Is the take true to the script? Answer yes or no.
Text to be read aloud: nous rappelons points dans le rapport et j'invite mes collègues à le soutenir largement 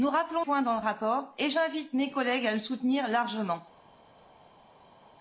yes